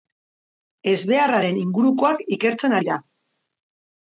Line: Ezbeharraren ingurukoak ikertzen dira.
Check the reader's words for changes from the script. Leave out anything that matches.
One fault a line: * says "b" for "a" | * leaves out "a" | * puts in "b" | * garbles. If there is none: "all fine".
all fine